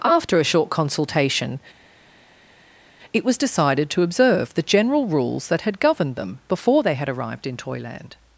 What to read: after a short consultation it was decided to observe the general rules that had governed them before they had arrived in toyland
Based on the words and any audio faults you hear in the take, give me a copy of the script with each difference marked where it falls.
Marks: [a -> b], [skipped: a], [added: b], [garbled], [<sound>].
after a short consultation it was decided to observe the general rules that had governed them before they had arrived in toyland